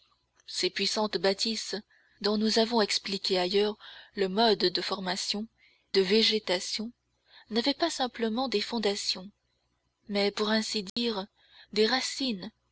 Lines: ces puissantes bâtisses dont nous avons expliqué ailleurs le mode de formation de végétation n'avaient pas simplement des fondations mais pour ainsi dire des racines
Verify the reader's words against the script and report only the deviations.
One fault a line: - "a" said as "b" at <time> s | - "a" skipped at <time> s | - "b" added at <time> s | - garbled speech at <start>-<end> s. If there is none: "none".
none